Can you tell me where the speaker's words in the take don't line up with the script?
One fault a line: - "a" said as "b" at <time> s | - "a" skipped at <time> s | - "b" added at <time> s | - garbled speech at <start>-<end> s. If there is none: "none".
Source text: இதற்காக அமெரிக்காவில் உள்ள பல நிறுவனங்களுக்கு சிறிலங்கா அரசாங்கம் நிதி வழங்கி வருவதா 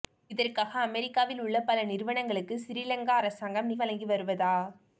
- "நிதி" skipped at 3.7 s